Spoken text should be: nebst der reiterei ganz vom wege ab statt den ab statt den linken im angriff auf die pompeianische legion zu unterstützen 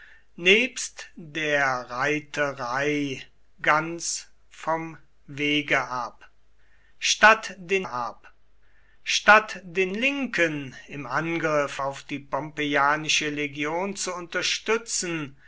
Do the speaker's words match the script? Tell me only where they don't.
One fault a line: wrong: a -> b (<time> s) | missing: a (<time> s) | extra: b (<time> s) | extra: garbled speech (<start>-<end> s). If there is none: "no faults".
no faults